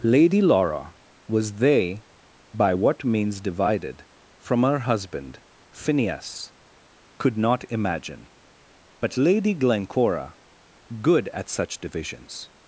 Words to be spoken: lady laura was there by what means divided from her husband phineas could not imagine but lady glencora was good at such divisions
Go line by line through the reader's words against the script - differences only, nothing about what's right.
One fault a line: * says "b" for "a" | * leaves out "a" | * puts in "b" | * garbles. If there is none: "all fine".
* says "they" for "there"
* leaves out "was"